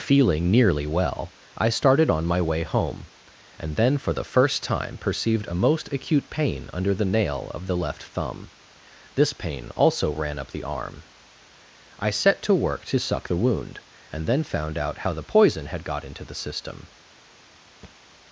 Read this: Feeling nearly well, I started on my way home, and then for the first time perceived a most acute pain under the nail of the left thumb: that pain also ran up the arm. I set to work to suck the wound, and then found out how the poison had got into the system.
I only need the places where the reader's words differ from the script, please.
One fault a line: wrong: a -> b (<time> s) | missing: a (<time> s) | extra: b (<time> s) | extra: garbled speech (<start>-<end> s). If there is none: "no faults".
wrong: that -> this (9.1 s)